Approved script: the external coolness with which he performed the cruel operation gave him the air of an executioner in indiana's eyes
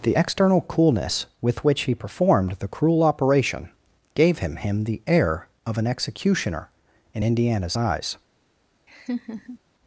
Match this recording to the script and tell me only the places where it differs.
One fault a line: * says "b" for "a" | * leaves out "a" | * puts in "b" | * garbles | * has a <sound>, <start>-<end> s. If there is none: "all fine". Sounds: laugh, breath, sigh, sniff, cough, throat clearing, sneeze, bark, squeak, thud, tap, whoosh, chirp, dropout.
* puts in "him"
* has a laugh, 8.9-9.6 s